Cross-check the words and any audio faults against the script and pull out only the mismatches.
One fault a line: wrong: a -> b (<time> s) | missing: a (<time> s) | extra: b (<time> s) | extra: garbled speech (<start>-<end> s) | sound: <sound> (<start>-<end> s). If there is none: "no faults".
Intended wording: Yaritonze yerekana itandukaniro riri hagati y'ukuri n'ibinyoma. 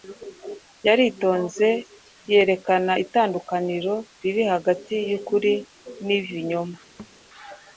sound: thud (7.0-7.2 s)